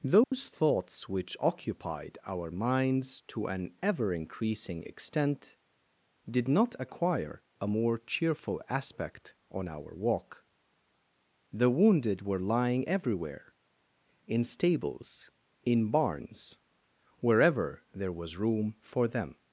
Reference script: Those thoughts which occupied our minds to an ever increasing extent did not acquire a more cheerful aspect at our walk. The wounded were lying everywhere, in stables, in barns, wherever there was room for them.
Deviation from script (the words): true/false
true